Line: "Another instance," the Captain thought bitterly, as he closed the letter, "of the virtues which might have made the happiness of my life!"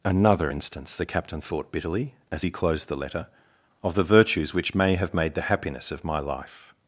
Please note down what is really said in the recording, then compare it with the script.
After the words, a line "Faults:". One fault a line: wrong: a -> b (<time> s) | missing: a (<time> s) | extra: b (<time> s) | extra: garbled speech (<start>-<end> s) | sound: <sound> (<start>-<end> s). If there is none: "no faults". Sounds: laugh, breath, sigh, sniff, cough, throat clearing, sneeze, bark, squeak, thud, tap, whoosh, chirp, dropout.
"Another instance," the Captain thought bitterly, as he closed the letter, "of the virtues which may have made the happiness of my life!"
Faults:
wrong: might -> may (4.7 s)